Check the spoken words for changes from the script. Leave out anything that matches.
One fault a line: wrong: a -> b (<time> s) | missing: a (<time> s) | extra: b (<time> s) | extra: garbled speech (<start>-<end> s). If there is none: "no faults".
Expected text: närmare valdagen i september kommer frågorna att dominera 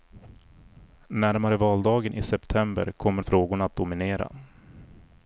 no faults